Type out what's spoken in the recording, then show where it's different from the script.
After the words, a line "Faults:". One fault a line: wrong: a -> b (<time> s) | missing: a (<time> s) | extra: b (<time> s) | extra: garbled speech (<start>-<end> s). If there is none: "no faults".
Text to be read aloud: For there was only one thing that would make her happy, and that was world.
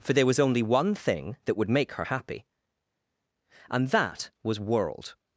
For there was only one thing that would make her happy, and that was world.
Faults:
no faults